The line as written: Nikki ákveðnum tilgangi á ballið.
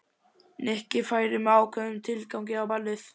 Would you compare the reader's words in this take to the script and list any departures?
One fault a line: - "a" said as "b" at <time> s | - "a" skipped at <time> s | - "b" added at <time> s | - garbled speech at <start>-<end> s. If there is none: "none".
- "færi með" added at 1.1 s